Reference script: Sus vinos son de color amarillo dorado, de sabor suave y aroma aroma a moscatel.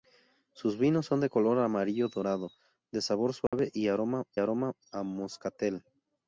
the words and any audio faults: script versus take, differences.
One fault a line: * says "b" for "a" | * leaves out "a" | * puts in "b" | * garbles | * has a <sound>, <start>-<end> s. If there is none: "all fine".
* has a dropout, 3.5-3.5 s